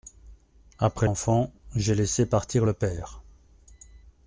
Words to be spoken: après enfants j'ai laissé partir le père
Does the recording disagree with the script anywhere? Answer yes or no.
no